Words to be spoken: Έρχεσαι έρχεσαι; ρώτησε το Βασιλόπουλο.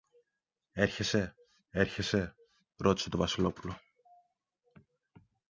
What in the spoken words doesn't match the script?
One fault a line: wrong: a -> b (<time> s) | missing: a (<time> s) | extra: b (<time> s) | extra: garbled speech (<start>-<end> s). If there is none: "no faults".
no faults